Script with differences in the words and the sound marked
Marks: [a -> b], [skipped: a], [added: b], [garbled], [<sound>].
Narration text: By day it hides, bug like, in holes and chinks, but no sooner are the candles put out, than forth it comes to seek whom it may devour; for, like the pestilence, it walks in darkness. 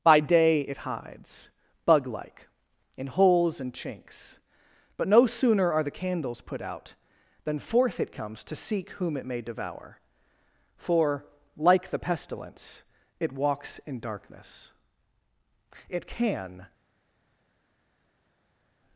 By day it hides, bug like, in holes and chinks, but no sooner are the candles put out, than forth it comes to seek whom it may devour; for, like the pestilence, it walks in darkness. [added: It can]